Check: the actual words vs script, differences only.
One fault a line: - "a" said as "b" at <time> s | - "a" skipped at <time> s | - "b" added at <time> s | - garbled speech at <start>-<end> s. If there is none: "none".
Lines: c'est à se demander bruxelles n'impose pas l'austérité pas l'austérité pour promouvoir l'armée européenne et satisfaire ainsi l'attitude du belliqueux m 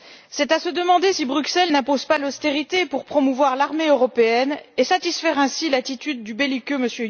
- "si" added at 1.1 s
- "pas l'austérité" skipped at 2.8 s